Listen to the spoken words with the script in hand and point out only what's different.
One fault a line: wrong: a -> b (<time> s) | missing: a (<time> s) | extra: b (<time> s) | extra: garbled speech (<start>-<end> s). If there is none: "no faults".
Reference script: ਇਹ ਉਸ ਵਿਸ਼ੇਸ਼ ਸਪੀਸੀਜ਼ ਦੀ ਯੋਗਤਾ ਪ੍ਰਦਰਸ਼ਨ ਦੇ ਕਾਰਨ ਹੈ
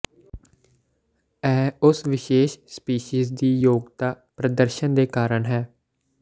no faults